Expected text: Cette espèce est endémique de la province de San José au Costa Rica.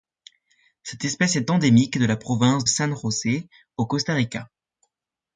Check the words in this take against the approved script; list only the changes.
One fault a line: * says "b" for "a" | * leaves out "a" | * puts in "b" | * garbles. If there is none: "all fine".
* leaves out "de"